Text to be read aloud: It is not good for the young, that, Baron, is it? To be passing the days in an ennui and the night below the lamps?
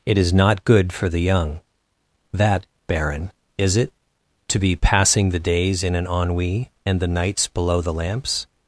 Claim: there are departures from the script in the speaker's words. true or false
true